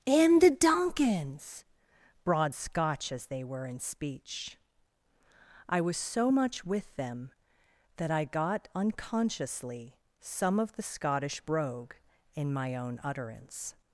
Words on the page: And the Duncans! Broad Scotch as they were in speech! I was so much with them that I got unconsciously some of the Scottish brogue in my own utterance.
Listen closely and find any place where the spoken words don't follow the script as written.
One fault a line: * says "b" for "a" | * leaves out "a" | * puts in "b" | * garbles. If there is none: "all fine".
all fine